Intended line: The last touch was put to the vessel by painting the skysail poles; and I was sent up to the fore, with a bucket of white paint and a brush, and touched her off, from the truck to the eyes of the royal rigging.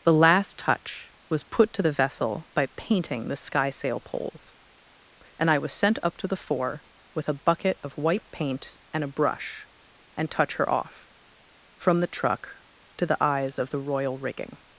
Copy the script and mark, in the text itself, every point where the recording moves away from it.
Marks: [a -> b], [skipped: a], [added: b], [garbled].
The last touch was put to the vessel by painting the skysail poles; and I was sent up to the fore, with a bucket of white paint and a brush, and [touched -> touch] her off, from the truck to the eyes of the royal rigging.